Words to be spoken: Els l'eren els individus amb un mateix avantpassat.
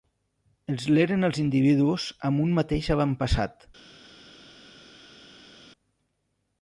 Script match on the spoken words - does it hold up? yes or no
yes